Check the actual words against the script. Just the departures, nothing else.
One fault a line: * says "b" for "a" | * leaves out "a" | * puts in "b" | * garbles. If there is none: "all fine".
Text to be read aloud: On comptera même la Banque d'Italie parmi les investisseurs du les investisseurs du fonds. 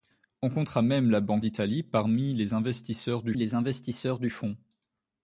all fine